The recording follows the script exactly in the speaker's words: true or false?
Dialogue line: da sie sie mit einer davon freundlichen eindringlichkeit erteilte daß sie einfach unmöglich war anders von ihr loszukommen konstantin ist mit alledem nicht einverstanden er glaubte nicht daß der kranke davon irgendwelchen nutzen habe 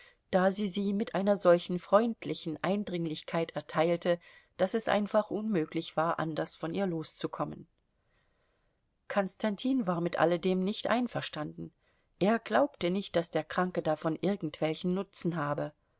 false